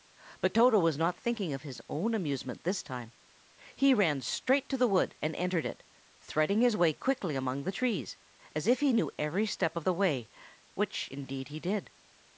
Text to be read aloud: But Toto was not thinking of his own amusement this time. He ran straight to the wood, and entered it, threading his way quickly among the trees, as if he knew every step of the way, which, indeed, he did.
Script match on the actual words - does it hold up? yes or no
yes